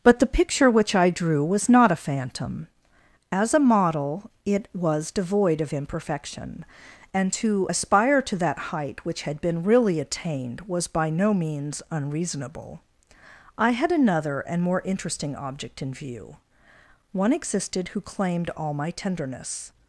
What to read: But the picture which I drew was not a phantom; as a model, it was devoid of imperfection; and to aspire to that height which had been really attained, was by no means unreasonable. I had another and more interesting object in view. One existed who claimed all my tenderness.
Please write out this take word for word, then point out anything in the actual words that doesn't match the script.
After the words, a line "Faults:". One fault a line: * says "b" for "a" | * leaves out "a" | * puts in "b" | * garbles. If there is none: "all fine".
But the picture which I drew was not a phantom; as a model, it was devoid of imperfection; and to aspire to that height which had been really attained, was by no means unreasonable. I had another and more interesting object in view. One existed who claimed all my tenderness.
Faults:
all fine